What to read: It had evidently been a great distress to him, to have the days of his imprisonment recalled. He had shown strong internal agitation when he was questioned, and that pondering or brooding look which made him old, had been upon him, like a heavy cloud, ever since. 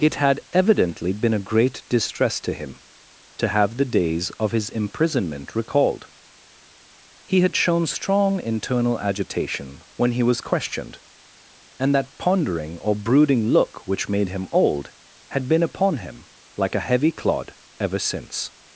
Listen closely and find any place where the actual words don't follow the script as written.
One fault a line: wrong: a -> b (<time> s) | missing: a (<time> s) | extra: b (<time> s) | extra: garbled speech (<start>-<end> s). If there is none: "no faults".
wrong: cloud -> clod (17.1 s)